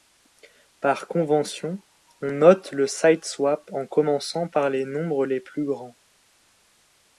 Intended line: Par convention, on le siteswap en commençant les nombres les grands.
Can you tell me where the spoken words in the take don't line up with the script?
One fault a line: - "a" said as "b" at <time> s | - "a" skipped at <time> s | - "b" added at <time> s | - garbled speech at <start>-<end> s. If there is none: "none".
- "note" added at 2.3 s
- "par" added at 4.5 s
- "plus" added at 5.4 s